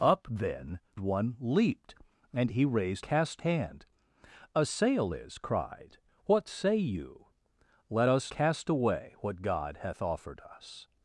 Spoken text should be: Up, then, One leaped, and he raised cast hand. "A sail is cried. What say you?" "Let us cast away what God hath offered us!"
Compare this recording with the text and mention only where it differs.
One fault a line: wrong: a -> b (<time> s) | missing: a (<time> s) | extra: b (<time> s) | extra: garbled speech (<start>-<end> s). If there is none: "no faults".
no faults